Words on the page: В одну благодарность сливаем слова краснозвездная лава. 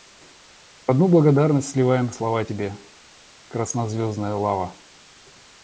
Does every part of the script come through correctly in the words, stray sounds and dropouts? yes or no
no